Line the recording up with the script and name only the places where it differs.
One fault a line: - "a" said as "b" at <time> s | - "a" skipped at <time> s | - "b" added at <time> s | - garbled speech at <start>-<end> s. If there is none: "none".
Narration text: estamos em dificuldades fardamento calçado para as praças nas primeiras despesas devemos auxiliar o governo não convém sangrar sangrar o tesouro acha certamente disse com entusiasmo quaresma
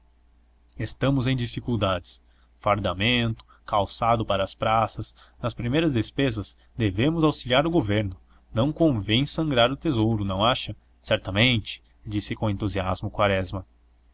- "sangrar" skipped at 9.7 s
- "não" added at 10.2 s